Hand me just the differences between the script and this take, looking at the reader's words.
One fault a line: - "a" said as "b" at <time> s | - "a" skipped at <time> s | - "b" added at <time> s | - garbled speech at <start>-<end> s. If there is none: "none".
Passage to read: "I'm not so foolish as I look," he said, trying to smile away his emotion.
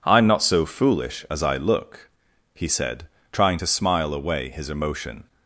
none